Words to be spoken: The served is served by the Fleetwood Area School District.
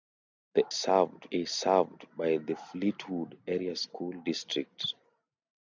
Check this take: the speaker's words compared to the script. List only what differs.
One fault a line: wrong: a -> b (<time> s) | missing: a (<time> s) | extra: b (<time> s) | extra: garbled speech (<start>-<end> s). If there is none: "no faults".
no faults